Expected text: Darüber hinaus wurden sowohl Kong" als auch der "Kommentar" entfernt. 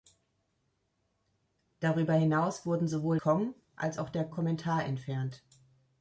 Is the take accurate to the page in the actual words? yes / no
yes